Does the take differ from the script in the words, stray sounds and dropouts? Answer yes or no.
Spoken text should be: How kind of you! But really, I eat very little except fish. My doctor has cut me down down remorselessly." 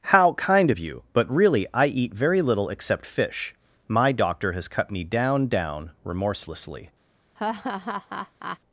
yes